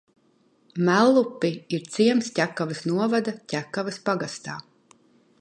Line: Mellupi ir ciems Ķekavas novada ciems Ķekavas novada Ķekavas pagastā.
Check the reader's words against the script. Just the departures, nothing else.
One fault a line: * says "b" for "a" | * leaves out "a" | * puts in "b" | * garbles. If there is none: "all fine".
* leaves out "ciems Ķekavas novada"